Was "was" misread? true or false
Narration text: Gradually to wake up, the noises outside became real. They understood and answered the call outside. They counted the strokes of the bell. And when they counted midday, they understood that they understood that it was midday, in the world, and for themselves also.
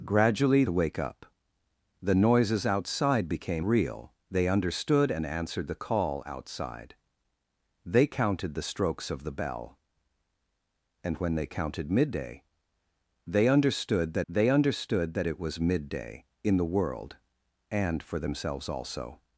false